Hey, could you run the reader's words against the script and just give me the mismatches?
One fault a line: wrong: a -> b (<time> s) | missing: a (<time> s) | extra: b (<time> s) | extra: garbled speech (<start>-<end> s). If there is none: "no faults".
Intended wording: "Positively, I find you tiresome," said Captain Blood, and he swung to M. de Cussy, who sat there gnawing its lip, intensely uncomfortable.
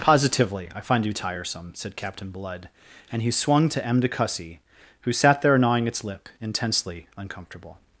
no faults